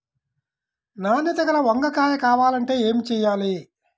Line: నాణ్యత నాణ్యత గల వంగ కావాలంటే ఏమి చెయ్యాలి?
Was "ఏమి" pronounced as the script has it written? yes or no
yes